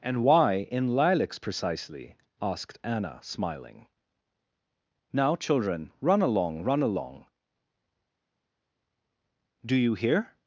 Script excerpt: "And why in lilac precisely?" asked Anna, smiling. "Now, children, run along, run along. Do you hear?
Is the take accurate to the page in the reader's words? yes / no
no